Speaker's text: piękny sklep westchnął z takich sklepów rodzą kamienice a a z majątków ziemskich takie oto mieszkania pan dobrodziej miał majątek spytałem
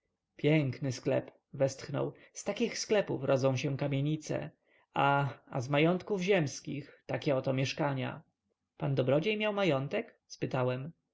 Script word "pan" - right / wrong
right